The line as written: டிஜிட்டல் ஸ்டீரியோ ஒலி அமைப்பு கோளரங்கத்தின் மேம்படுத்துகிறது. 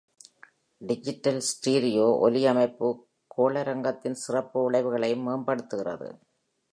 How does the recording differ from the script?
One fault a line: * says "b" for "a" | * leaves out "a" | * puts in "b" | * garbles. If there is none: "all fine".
* puts in "சிறப்பு விளைவுகளையும்"